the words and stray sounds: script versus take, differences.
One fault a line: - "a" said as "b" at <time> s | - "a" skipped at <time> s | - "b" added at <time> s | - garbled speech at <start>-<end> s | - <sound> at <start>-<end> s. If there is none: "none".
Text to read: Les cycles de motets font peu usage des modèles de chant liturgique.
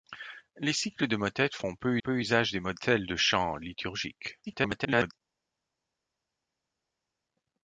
- "peu" added at 2.0 s
- garbled speech at 4.5-5.1 s